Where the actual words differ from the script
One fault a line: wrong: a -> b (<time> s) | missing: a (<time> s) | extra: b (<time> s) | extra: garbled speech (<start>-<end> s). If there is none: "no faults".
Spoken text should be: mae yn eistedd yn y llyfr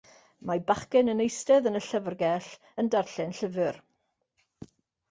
extra: bachgen (0.7 s)
extra: llyfrgell yn darllen (1.9 s)